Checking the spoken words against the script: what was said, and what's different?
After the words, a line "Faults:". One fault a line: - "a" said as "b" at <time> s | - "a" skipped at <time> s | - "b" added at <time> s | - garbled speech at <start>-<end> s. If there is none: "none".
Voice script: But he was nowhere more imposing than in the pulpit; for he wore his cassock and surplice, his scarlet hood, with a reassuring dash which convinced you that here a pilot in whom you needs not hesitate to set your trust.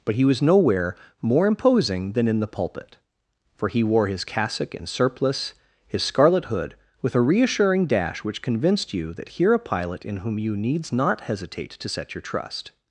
But he was nowhere more imposing than in the pulpit; for he wore his cassock and surplice, his scarlet hood, with a reassuring dash which convinced you that here a pilot in whom you needs not hesitate to set your trust.
Faults:
none